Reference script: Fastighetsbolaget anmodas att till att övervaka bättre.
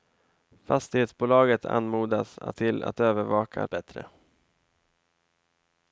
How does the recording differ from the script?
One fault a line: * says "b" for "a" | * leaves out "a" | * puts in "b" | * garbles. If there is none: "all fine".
all fine